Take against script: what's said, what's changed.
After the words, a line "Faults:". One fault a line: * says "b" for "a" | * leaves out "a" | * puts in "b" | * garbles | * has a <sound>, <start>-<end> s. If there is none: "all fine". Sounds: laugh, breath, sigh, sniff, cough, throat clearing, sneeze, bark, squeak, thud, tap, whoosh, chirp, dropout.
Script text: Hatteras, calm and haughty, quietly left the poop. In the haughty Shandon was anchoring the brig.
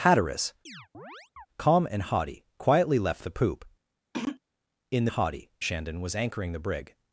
Hatteras, calm and haughty, quietly left the poop. In the haughty Shandon was anchoring the brig.
Faults:
* has a chirp, 0.7-1.5 s
* has a throat clearing, 4.1-4.4 s